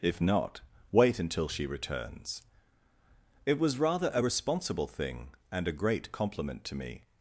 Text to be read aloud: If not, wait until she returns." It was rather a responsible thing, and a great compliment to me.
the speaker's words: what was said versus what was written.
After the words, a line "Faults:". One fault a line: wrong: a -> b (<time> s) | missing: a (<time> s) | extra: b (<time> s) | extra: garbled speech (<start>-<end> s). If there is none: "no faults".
If not, wait until she returns." It was rather a responsible thing, and a great compliment to me.
Faults:
no faults